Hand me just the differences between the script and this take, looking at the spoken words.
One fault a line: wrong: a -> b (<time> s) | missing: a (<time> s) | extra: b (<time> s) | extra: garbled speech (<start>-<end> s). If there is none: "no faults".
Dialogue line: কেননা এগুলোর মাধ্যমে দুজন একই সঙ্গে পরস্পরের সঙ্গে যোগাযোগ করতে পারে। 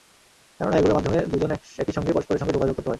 no faults